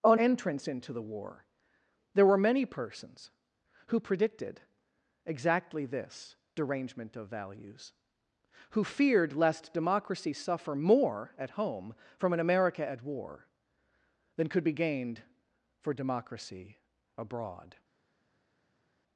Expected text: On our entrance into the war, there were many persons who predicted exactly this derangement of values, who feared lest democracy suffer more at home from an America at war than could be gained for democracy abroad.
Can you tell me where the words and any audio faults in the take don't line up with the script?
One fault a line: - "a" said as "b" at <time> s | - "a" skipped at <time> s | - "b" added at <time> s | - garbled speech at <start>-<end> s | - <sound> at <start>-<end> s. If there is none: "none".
- "our" skipped at 0.2 s